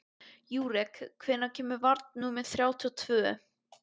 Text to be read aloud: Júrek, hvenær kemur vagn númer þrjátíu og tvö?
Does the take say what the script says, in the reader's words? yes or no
yes